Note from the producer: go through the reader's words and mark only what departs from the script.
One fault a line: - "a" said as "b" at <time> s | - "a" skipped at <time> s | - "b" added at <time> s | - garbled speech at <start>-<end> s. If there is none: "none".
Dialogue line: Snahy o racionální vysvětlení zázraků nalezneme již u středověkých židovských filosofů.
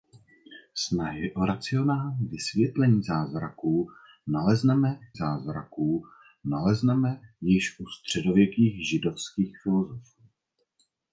- "zázraků nalezneme" added at 5.1 s